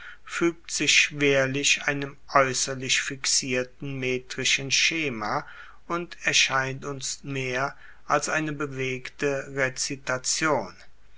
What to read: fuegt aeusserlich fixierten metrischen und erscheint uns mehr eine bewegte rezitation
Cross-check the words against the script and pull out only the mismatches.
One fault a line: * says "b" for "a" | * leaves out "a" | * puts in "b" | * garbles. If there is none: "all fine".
* puts in "sich schwerlich einem"
* puts in "schema"
* puts in "als"